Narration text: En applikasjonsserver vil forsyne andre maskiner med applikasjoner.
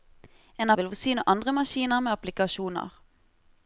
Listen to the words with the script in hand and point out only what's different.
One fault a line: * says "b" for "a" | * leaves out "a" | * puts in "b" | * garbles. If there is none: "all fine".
* leaves out "applikasjonsserver"